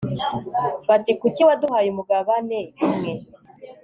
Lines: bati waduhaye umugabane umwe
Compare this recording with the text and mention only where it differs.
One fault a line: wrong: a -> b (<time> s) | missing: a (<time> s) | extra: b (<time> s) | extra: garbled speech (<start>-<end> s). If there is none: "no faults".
extra: kuki (1.2 s)